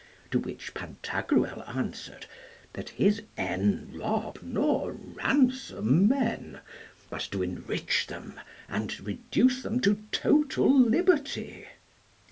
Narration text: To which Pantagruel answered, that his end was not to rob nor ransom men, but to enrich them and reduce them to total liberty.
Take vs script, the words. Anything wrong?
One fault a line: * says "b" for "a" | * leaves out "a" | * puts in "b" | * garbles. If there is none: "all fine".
* leaves out "was not to"